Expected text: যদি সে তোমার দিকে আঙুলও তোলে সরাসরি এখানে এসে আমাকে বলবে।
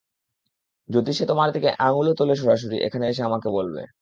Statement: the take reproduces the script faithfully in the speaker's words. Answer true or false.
true